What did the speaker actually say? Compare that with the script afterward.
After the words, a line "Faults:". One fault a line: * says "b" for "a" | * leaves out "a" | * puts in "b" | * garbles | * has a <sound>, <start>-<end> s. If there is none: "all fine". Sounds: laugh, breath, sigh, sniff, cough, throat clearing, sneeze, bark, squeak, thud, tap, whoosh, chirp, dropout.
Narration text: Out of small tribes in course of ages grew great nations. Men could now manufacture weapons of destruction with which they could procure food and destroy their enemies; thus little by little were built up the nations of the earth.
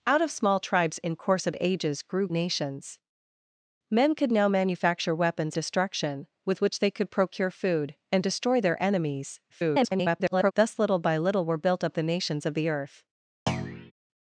Out of small tribes in course of ages grew nations. Men could now manufacture weapons destruction with which they could procure food and destroy their enemies; [garbled] thus little by little were built up the nations of the earth.
Faults:
* leaves out "great"
* leaves out "of"
* garbles
* has a thud, 13.5-13.9 s